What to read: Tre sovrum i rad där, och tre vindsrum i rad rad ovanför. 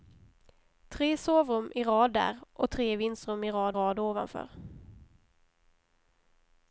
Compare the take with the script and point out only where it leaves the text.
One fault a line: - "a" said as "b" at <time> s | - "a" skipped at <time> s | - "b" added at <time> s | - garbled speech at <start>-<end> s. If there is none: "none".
none